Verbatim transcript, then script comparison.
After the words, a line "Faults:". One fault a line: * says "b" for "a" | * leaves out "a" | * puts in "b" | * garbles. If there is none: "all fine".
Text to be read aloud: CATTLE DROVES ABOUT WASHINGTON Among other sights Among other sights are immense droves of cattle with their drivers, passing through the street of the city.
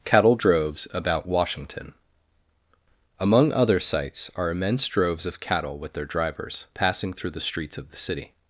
CATTLE DROVES ABOUT WASHINGTON Among other sights are immense droves of cattle with their drivers, passing through the streets of the city.
Faults:
* leaves out "Among other sights"
* says "streets" for "street"